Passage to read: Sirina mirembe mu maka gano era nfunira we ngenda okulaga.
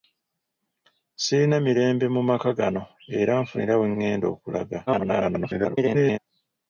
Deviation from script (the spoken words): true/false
true